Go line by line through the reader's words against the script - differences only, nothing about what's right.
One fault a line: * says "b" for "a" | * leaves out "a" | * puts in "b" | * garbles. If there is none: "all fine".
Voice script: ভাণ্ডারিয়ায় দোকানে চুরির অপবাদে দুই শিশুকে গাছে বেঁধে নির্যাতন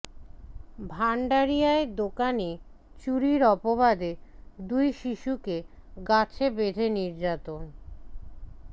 all fine